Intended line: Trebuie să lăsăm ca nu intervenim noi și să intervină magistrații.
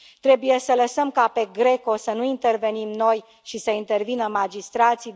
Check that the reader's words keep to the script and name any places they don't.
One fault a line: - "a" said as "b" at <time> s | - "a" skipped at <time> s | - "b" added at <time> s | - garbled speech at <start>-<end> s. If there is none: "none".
- "pe GRECO să" added at 1.3 s